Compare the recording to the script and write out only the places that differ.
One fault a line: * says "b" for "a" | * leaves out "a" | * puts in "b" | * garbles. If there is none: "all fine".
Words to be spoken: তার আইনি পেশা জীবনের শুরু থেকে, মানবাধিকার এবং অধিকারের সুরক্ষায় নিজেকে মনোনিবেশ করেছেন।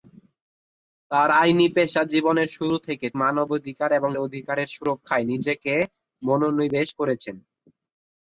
all fine